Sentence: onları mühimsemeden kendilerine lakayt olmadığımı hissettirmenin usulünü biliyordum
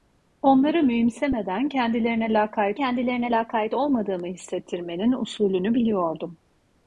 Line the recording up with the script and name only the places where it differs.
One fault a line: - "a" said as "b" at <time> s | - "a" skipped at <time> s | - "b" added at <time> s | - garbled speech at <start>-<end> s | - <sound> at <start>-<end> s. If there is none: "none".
- "kendilerine lakayt" added at 2.7 s